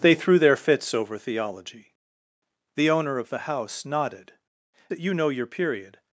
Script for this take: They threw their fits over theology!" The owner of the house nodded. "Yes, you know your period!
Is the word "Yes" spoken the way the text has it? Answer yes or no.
no